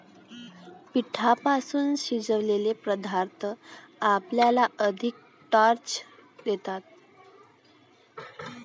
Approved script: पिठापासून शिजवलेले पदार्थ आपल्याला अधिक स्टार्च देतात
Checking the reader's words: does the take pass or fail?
pass